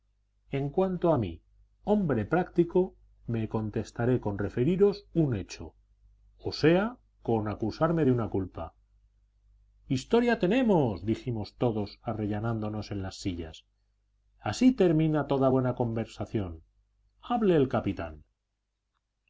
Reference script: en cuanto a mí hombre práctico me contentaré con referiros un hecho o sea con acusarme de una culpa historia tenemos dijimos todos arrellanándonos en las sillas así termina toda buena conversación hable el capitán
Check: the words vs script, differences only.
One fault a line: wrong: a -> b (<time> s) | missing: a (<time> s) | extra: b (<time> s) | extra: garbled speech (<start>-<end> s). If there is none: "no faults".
no faults